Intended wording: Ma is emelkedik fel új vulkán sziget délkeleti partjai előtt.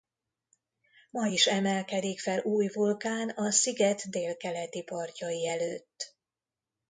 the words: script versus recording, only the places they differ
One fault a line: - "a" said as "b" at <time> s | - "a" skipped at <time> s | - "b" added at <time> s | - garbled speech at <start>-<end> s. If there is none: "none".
- "a" added at 3.3 s